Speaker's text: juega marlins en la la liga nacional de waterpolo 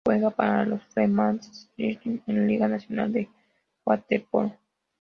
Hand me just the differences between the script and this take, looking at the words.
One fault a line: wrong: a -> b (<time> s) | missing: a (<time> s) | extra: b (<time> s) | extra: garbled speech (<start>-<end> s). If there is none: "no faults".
extra: para los fremantle (0.3 s)
missing: la (2.5 s)